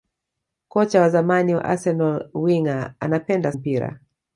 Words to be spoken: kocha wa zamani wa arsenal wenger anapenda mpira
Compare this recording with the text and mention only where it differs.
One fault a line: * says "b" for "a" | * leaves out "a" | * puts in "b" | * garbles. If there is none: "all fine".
all fine